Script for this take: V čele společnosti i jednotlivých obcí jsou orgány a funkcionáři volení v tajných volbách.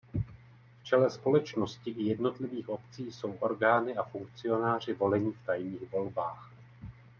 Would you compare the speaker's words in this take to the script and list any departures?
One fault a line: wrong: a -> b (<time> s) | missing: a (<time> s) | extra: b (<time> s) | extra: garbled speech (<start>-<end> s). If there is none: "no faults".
no faults